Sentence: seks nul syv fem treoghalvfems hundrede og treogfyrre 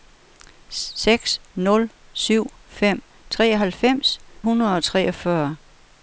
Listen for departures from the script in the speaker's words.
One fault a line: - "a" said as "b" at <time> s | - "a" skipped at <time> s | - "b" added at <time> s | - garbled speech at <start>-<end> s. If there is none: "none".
none